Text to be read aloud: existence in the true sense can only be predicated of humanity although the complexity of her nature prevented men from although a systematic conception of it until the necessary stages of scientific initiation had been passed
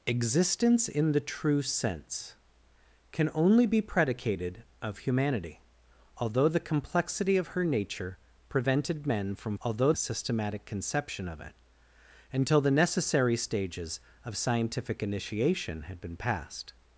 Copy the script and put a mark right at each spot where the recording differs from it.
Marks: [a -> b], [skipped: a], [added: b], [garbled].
existence in the true sense can only be predicated of humanity although the complexity of her nature prevented men from although a systematic conception of it until the necessary stages of scientific initiation had been passed